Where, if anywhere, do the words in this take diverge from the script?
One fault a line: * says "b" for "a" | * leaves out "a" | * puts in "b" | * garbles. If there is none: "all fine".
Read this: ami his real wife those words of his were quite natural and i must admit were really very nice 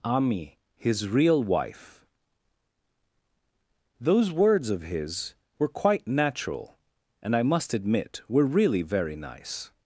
all fine